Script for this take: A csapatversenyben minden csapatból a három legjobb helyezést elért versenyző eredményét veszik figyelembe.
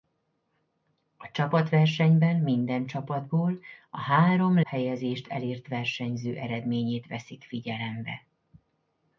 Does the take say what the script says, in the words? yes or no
no